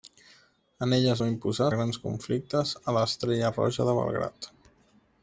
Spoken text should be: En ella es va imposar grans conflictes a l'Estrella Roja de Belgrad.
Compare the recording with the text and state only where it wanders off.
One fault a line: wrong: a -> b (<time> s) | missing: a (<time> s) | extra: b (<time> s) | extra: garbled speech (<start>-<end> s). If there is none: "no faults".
no faults